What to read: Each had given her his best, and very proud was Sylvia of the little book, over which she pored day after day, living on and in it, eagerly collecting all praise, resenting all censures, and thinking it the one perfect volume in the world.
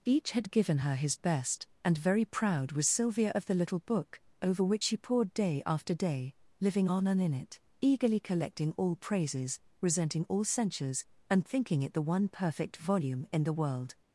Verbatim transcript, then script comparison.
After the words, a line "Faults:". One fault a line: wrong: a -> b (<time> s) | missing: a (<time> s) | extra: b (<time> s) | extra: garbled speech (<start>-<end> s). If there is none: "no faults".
Each had given her his best, and very proud was Sylvia of the little book, over which she pored day after day, living on and in it, eagerly collecting all praises, resenting all censures, and thinking it the one perfect volume in the world.
Faults:
wrong: praise -> praises (9.0 s)